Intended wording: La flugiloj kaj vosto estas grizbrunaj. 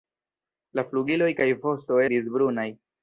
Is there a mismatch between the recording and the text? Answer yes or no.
yes